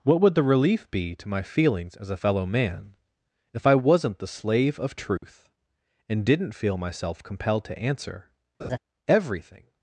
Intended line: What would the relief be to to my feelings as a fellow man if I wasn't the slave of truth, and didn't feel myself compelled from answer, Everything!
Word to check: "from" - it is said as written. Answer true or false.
false